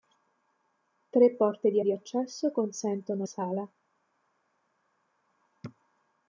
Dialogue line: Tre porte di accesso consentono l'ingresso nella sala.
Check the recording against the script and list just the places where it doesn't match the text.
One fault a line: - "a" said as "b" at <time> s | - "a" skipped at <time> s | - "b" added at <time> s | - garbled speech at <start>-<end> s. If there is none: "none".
- "di" added at 1.8 s
- "l'ingresso nella" skipped at 3.2 s